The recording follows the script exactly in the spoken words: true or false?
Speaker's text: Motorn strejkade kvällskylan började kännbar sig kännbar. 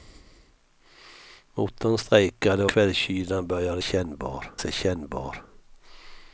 true